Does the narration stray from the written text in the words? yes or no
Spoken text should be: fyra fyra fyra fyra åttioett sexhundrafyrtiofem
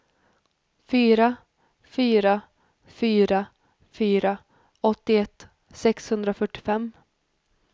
no